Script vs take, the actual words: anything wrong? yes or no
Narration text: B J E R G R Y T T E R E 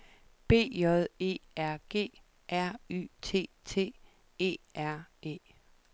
no